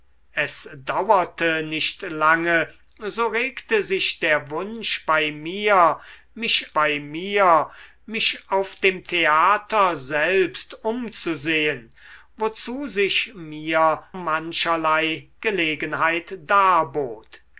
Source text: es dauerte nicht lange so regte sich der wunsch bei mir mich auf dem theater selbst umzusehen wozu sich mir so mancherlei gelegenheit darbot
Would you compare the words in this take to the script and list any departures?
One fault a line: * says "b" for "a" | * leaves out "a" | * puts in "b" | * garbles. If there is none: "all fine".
* puts in "bei mir mich"
* leaves out "so"